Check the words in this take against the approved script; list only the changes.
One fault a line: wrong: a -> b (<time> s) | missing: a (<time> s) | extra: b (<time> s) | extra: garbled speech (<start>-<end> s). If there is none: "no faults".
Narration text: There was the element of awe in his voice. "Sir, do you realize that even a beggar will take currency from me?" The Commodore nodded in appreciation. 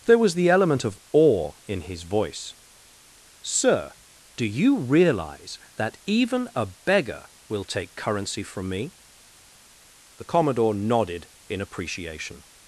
no faults